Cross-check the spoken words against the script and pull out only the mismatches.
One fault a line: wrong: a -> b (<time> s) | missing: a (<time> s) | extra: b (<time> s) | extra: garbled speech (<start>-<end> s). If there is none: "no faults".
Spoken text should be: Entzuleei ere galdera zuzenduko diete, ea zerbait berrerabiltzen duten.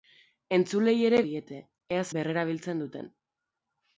missing: galdera zuzenduko (1.2 s)
missing: zerbait (2.1 s)